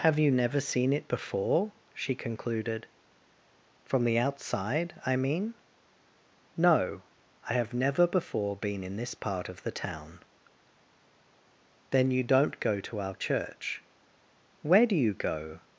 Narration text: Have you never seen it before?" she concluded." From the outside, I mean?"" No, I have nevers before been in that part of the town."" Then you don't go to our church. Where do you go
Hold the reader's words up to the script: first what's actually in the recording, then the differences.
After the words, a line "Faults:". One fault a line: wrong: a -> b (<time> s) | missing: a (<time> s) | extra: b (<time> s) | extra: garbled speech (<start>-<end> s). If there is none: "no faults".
Have you never seen it before?" she concluded." From the outside, I mean?"" No, I have never before been in this part of the town."" Then you don't go to our church. Where do you go
Faults:
wrong: nevers -> never (7.7 s)
wrong: that -> this (9.0 s)